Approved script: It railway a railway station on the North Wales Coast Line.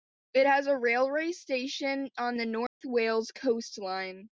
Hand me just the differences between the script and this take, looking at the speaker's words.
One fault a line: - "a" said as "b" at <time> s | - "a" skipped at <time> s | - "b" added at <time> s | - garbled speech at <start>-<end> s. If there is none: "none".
- "railway" said as "has" at 0.4 s